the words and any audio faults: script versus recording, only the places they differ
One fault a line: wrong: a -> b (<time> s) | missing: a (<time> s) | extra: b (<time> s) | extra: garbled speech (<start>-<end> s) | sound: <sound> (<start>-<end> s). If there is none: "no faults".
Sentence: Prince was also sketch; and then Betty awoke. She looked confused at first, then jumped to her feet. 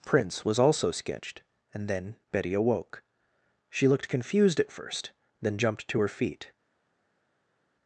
wrong: sketch -> sketched (0.9 s)